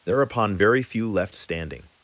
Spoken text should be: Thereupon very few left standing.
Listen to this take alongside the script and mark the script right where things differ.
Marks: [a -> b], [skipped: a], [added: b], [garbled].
Thereupon very few left standing.